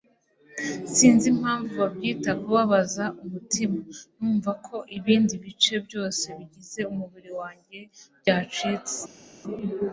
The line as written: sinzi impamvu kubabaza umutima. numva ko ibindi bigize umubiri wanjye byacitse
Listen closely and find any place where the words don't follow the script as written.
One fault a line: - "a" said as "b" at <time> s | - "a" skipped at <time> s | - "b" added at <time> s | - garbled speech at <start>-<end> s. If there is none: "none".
- "babyita" added at 1.8 s
- "bice byose" added at 5.4 s